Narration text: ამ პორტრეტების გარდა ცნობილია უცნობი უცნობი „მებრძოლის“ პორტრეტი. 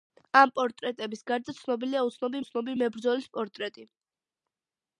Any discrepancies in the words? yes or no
no